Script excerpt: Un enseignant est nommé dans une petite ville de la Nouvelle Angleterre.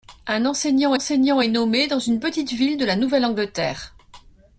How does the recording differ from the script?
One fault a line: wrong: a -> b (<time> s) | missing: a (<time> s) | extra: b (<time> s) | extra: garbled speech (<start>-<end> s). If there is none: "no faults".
extra: enseignant (0.9 s)